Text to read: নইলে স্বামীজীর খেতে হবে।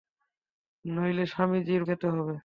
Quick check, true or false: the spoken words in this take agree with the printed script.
true